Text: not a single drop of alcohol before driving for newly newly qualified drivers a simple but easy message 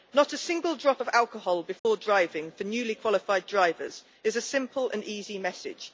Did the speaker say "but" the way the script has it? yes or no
no